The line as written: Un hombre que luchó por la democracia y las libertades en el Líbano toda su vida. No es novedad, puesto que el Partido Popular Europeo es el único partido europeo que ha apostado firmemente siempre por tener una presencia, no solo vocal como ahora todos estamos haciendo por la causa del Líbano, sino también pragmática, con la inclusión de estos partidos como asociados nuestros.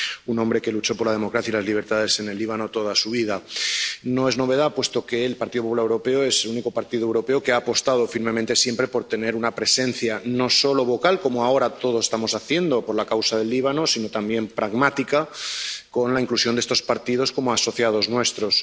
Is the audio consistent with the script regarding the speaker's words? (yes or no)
yes